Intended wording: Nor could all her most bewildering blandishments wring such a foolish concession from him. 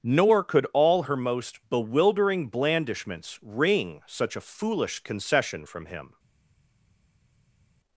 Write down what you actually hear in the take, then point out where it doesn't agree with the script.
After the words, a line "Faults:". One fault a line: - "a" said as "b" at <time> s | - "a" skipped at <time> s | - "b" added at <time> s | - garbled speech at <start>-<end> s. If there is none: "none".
Nor could all her most bewildering blandishments wring such a foolish concession from him.
Faults:
none